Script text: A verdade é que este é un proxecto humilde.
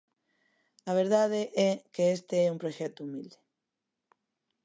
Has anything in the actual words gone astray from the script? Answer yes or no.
no